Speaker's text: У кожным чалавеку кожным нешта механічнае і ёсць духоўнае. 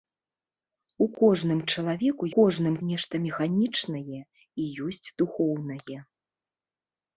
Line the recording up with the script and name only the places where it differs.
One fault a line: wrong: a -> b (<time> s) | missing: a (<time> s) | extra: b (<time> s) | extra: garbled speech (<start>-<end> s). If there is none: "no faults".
no faults